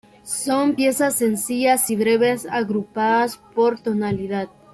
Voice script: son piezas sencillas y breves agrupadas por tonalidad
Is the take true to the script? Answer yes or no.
yes